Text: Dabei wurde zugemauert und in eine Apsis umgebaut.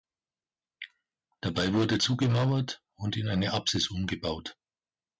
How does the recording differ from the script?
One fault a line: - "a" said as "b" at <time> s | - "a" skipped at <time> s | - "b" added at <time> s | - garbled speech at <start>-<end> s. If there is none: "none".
none